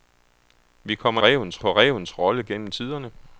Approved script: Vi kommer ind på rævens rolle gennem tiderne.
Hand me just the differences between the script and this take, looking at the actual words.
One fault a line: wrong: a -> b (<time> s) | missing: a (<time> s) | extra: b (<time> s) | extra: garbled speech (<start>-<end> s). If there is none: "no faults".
wrong: ind -> rævens (1.2 s)